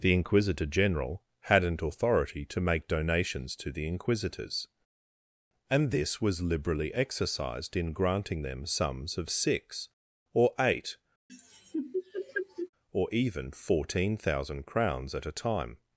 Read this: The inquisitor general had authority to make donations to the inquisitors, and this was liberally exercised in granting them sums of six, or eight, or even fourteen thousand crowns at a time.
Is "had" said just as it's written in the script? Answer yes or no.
no